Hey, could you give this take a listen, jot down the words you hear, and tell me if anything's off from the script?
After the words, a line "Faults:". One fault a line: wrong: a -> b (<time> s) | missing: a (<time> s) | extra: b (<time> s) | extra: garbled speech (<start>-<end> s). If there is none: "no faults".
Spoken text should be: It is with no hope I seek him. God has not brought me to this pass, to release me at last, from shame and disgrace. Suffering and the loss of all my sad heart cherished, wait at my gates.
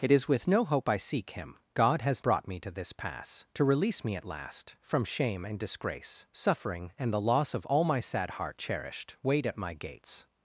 It is with no hope I seek him. God has brought me to this pass, to release me at last, from shame and disgrace. Suffering and the loss of all my sad heart cherished, wait at my gates.
Faults:
missing: not (2.2 s)